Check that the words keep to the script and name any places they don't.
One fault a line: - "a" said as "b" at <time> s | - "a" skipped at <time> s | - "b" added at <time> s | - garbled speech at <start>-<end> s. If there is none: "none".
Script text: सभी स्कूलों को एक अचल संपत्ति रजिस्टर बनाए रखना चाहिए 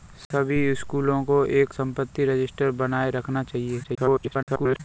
- "अचल" skipped at 1.8 s
- garbled speech at 3.8-4.8 s